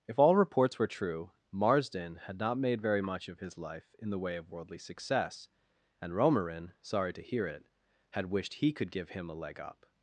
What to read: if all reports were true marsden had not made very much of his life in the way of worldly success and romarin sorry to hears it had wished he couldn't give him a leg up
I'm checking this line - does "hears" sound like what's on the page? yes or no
no